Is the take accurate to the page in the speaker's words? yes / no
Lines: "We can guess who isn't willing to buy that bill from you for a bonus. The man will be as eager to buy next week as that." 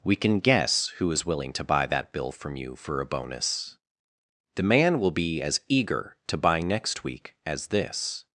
no